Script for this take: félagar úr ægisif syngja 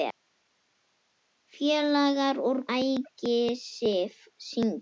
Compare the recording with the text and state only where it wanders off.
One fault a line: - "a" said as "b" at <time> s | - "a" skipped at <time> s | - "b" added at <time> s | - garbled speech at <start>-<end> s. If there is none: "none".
none